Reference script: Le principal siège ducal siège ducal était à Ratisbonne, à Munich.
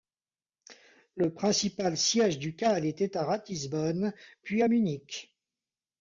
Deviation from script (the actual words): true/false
true